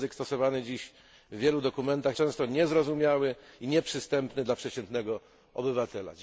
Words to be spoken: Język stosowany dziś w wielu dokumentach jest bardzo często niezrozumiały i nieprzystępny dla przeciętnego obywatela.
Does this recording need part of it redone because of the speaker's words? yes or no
yes